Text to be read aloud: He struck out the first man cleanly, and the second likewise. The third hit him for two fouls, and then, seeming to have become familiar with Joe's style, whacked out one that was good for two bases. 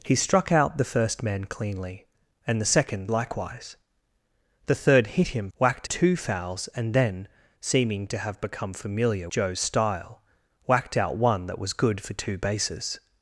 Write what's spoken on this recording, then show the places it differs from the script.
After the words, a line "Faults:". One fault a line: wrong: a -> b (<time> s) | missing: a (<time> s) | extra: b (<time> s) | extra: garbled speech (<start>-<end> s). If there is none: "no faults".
He struck out the first man cleanly, and the second likewise. The third hit him whacked two fouls, and then, seeming to have become familiar Joe's style, whacked out one that was good for two bases.
Faults:
wrong: for -> whacked (5.6 s)
missing: with (9.3 s)